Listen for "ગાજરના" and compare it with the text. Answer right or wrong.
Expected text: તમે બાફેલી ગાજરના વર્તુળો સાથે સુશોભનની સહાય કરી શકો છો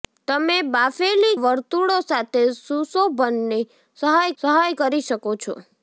wrong